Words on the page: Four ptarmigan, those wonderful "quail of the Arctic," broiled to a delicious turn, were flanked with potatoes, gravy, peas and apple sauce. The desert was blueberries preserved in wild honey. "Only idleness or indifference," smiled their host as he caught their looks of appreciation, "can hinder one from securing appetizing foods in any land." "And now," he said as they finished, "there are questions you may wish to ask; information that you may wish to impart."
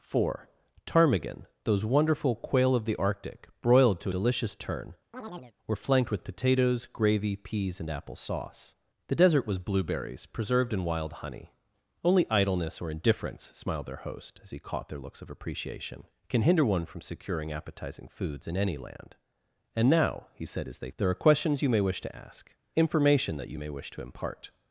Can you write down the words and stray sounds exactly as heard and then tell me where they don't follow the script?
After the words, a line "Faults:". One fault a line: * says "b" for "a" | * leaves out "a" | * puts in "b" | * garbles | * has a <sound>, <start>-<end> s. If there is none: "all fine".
Four ptarmigan, those wonderful "quail of the Arctic," broiled to delicious turn, were flanked with potatoes, gravy, peas and apple sauce. The desert was blueberries preserved in wild honey. "Only idleness or indifference," smiled their host as he caught their looks of appreciation, "can hinder one from securing appetizing foods in any land." "And now," he said as they "there are questions you may wish to ask; information that you may wish to impart."
Faults:
* leaves out "a"
* has a chirp, 5.1-5.5 s
* leaves out "finished"